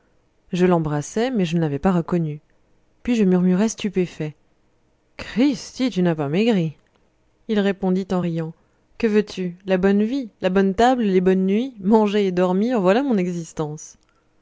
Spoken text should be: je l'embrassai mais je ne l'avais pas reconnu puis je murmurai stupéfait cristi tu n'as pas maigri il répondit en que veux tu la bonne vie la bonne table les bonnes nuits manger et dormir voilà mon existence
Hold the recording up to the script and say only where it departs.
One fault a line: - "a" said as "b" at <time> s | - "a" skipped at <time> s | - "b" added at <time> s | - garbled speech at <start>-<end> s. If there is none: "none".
- "riant" added at 8.2 s